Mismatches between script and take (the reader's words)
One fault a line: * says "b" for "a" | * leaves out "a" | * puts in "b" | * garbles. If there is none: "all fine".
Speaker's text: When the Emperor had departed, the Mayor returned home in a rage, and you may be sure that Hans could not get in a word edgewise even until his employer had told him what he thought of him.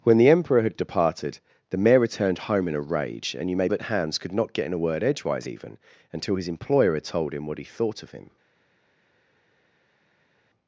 * leaves out "be sure"